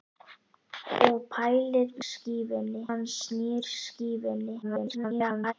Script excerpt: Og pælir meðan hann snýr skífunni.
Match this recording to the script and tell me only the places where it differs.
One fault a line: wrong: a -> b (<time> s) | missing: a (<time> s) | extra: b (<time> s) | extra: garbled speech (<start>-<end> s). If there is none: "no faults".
wrong: meðan -> skífunni (2.1 s)
extra: garbled speech (4.6-5.5 s)